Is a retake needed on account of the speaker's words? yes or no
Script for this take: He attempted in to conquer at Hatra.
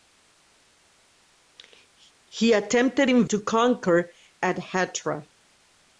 no